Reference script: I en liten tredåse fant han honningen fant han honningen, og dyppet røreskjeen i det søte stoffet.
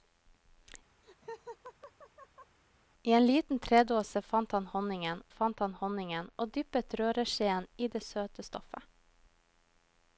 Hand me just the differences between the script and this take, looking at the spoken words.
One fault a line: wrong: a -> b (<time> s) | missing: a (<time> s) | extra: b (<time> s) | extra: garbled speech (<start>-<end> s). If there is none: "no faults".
no faults